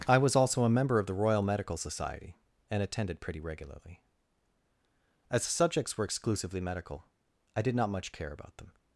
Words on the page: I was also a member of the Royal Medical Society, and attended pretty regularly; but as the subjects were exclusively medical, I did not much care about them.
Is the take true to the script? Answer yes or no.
no